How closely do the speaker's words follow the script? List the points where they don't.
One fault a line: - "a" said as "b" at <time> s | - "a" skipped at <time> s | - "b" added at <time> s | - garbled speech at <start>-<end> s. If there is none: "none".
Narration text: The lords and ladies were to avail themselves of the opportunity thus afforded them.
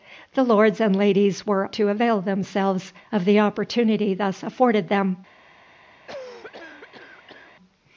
none